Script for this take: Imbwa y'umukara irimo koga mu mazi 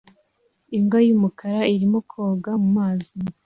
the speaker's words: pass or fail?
pass